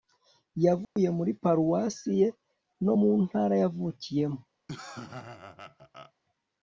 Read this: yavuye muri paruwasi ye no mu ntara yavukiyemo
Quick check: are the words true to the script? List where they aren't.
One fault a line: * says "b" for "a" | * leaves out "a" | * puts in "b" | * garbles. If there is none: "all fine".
all fine